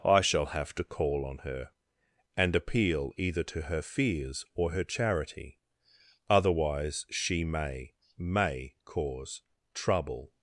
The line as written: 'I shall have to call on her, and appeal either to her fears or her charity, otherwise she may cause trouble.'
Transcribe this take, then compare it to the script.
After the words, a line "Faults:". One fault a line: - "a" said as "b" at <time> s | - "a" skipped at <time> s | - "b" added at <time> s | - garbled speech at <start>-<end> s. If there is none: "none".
'I shall have to call on her, and appeal either to her fears or her charity, otherwise she may may cause trouble.'
Faults:
- "may" added at 8.2 s